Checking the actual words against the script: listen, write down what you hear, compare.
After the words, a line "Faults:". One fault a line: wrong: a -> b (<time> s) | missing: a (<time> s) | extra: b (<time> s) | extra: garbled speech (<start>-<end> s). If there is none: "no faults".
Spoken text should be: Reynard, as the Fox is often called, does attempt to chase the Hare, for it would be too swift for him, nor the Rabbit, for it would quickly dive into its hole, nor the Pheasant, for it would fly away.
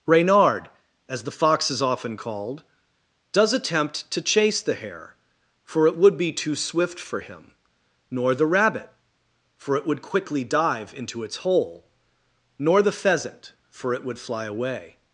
Reynard, as the Fox is often called, does attempt to chase the Hare, for it would be too swift for him, nor the Rabbit, for it would quickly dive into its hole, nor the Pheasant, for it would fly away.
Faults:
no faults